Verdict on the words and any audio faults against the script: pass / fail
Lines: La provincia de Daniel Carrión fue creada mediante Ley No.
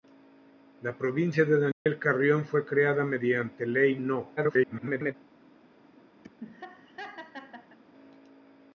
fail